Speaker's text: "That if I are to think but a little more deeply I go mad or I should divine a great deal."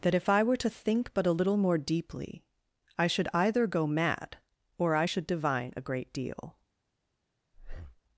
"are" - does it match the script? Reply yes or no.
no